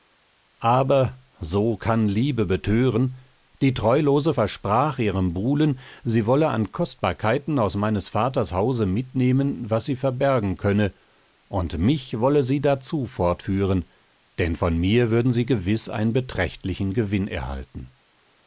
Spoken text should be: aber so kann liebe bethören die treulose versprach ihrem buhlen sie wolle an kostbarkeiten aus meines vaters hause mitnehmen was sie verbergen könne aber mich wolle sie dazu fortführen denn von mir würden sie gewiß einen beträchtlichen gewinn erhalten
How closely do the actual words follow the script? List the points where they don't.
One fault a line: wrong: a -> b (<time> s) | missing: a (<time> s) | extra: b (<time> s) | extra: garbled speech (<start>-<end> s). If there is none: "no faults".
wrong: aber -> und (11.5 s)